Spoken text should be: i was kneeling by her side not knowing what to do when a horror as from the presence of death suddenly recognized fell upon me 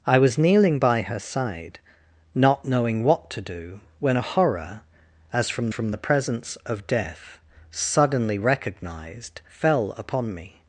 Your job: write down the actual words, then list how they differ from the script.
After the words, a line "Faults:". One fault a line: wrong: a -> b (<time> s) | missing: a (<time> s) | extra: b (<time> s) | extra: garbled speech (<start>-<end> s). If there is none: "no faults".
i was kneeling by her side not knowing what to do when a horror as from from the presence of death suddenly recognized fell upon me
Faults:
extra: from (5.7 s)